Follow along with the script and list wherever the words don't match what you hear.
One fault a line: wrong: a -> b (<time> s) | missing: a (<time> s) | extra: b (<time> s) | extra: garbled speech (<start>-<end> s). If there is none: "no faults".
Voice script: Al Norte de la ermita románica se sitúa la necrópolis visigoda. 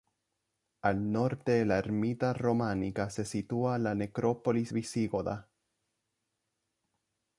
no faults